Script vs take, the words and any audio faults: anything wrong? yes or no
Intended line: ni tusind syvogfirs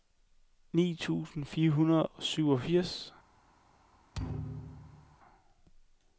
yes